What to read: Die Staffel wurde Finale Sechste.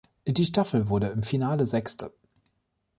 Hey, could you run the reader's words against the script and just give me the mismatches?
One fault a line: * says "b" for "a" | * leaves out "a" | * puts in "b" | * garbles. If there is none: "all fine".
* puts in "im"